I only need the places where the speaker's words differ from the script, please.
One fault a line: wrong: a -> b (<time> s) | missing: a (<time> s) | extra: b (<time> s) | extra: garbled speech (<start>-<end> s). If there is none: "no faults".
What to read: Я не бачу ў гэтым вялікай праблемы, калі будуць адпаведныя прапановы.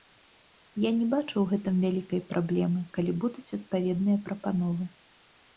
no faults